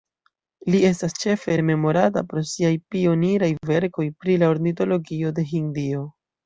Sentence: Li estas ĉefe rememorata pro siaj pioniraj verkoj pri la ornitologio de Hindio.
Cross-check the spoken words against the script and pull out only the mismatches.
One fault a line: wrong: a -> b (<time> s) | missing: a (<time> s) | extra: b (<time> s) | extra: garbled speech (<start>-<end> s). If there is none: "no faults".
no faults